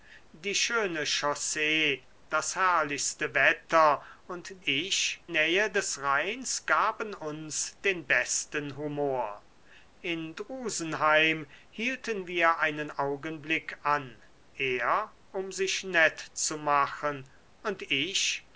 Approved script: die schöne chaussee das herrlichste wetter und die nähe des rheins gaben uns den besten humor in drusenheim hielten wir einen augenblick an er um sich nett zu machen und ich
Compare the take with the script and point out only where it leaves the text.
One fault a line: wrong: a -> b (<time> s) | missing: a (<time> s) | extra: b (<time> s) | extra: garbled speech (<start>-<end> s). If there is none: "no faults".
wrong: die -> ich (4.6 s)